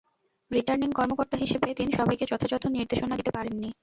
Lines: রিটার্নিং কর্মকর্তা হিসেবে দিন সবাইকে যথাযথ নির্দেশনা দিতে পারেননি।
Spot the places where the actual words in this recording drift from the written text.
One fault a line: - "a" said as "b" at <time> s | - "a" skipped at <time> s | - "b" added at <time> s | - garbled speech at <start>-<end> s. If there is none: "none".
none